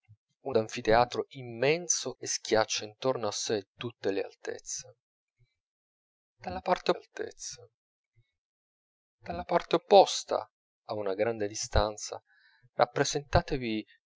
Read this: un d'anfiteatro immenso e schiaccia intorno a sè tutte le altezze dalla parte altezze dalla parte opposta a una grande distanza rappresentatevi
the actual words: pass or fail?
pass